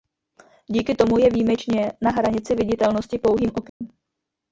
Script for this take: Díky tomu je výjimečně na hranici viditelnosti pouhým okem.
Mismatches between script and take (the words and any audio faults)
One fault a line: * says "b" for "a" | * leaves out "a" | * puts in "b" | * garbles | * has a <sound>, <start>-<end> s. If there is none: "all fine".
* has a dropout, 3.7-3.8 s